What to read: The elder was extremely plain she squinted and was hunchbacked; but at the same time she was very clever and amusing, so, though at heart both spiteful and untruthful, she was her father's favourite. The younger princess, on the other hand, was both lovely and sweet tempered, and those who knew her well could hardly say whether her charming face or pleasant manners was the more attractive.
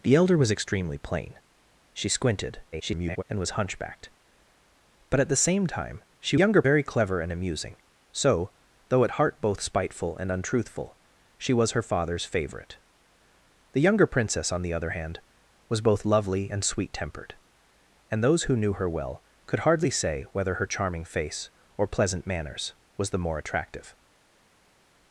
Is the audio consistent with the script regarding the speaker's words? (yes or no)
no